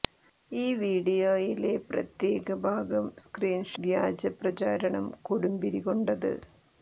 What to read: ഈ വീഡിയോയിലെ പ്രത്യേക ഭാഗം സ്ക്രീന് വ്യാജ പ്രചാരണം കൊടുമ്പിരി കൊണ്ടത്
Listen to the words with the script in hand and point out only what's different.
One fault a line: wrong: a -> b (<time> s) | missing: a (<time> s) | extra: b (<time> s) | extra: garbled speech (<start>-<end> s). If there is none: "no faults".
no faults